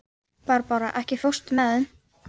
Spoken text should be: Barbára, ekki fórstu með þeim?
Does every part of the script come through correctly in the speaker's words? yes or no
yes